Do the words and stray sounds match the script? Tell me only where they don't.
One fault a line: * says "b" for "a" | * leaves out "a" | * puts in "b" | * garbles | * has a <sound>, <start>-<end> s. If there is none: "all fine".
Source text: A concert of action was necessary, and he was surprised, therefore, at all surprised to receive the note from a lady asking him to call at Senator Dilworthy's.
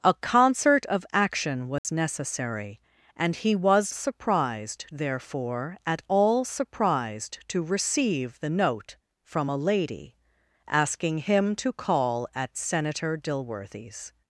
* has a dropout, 1.8-1.8 s